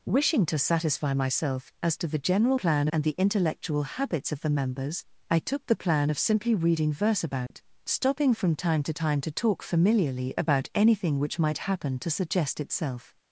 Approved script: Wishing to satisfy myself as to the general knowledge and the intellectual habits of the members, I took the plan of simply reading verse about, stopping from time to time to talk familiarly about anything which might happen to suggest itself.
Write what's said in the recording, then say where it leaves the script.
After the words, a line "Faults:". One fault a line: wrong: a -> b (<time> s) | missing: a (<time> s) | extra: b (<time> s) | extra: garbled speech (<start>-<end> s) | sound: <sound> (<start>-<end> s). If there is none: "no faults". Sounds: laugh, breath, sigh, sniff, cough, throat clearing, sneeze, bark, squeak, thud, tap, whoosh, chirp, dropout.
Wishing to satisfy myself as to the general plan and the intellectual habits of the members, I took the plan of simply reading verse about, stopping from time to time to talk familiarly about anything which might happen to suggest itself.
Faults:
wrong: knowledge -> plan (2.5 s)
sound: dropout (7.5-7.5 s)